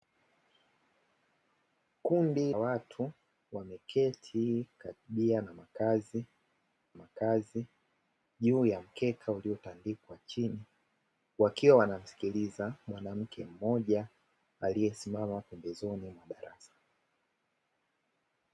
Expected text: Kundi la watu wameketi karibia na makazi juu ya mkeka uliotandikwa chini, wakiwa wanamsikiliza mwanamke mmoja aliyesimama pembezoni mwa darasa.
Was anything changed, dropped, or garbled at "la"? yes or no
yes